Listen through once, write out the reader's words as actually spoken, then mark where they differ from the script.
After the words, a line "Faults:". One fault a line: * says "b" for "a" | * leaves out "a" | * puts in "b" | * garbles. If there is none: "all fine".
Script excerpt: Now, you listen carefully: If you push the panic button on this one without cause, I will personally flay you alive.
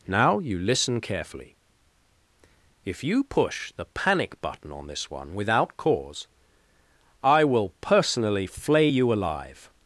Now, you listen carefully: If you push the panic button on this one without cause, I will personally flay you alive.
Faults:
all fine